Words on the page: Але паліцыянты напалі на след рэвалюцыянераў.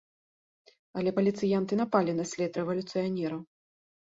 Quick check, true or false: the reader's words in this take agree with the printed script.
true